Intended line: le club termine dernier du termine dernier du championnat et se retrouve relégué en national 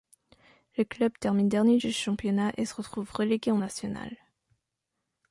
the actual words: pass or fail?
fail